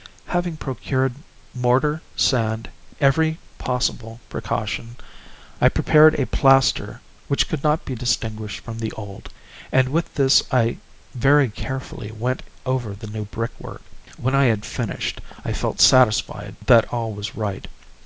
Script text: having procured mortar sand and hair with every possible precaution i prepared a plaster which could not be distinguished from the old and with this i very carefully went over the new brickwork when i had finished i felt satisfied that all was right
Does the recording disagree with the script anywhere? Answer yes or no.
yes